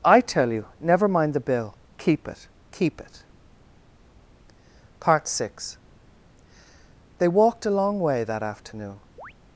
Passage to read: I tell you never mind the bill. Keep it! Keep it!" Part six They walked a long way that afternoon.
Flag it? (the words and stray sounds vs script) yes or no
yes